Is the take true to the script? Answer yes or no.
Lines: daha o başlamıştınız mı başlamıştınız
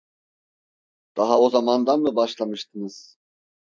no